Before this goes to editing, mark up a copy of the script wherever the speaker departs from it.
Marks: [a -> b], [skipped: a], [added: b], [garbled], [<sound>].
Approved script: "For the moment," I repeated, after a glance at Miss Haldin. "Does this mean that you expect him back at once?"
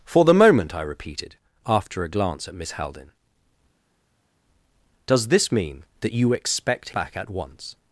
"For the moment," I repeated, after a glance at Miss Haldin. "Does this mean that you expect [skipped: him] back at once?"